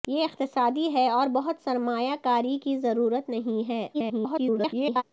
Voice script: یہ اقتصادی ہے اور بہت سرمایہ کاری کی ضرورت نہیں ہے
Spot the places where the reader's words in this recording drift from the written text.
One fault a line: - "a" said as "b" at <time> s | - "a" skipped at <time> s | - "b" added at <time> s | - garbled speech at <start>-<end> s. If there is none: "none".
- garbled speech at 3.9-5.0 s